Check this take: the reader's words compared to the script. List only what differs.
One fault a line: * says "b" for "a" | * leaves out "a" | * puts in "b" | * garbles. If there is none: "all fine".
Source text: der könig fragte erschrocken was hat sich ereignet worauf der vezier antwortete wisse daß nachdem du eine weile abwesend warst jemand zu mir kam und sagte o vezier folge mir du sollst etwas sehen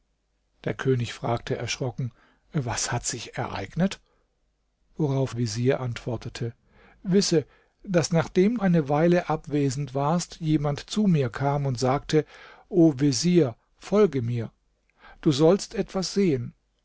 * leaves out "der"
* leaves out "du"